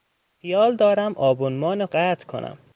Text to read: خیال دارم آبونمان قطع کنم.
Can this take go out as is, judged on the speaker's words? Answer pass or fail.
pass